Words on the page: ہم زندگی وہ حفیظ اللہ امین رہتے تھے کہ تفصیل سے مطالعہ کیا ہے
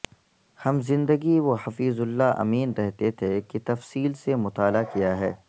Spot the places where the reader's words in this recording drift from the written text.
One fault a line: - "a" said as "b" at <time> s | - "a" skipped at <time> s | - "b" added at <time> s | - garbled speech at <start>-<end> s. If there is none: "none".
none